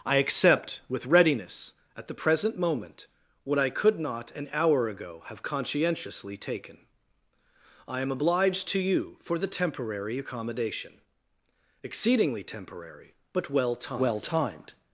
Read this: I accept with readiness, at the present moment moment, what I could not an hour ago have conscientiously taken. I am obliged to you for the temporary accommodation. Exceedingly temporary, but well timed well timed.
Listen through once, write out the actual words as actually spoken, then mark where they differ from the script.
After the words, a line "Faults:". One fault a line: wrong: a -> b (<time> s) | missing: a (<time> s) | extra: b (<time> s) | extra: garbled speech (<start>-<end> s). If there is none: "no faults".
I accept with readiness, at the present moment, what I could not an hour ago have conscientiously taken. I am obliged to you for the temporary accommodation. Exceedingly temporary, but well timed well timed.
Faults:
missing: moment (3.1 s)